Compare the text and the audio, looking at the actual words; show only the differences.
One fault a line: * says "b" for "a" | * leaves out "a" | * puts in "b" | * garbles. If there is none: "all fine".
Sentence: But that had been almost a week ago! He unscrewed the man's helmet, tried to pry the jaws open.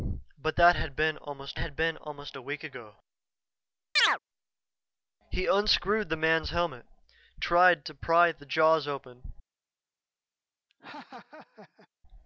* puts in "had been almost"